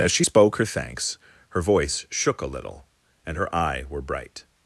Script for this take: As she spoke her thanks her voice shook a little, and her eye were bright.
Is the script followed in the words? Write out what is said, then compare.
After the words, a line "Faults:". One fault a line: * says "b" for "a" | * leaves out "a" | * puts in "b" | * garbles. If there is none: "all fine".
As she spoke her thanks her voice shook a little, and her eye were bright.
Faults:
all fine